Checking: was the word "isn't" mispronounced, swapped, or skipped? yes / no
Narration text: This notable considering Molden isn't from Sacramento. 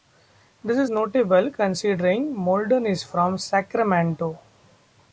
yes